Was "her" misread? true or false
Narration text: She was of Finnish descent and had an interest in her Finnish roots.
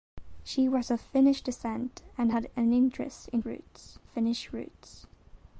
true